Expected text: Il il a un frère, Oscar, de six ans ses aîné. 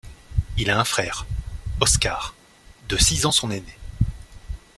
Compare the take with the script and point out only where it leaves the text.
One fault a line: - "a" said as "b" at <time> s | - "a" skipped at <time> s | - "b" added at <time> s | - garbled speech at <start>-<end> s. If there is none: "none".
- "il" skipped at 0.7 s
- "ses" said as "son" at 3.3 s